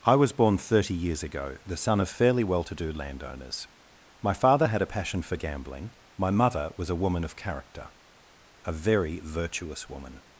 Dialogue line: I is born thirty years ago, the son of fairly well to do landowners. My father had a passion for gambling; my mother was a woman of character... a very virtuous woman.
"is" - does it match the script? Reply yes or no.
no